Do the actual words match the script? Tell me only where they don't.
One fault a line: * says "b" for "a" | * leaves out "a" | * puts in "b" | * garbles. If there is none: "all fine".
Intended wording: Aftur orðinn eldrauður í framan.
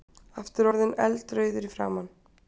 all fine